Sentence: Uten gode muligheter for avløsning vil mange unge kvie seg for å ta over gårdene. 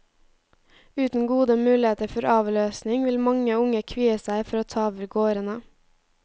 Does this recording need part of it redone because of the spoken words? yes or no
no